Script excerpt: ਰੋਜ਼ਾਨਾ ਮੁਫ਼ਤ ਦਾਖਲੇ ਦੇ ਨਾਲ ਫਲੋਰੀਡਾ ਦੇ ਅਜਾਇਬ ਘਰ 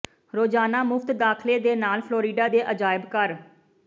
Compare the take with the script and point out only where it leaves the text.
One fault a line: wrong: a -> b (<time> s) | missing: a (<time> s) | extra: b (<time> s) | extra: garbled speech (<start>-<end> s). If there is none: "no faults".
no faults